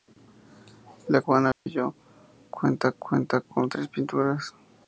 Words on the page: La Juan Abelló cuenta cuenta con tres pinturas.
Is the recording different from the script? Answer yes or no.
no